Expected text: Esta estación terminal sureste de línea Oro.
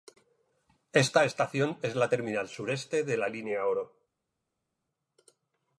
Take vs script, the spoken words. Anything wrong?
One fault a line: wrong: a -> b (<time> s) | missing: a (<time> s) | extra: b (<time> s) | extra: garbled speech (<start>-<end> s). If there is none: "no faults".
extra: es la (1.8 s)
extra: la (3.2 s)